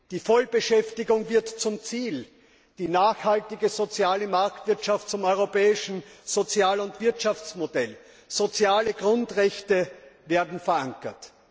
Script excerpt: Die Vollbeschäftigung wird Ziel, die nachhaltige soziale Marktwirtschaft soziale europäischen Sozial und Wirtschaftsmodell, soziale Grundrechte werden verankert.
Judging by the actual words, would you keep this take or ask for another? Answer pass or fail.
fail